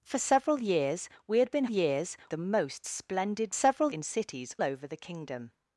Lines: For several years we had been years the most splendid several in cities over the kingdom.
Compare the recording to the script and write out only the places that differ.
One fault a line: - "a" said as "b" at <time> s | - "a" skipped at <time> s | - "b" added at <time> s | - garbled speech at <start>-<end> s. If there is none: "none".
none